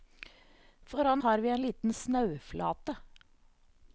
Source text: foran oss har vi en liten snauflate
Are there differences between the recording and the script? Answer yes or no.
yes